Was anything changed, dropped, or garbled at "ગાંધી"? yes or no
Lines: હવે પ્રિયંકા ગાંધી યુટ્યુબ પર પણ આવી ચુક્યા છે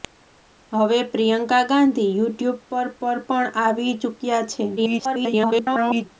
no